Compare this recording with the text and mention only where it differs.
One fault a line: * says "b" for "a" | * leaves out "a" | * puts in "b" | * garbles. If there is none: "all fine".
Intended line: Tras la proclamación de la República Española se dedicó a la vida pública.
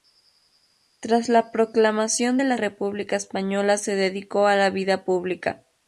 all fine